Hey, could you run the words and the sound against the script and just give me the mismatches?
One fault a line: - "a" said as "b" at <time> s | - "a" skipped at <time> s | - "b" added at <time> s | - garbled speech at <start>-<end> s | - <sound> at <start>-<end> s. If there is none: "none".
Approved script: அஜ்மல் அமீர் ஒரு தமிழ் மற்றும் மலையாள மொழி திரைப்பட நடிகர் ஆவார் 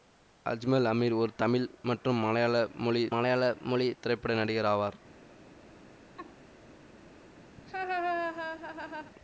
- "மலையாள மொழி" added at 3.1 s
- laugh at 6.2-6.3 s
- laugh at 7.6-9.1 s